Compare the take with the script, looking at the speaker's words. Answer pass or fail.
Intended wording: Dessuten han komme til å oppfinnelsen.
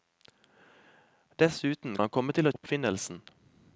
pass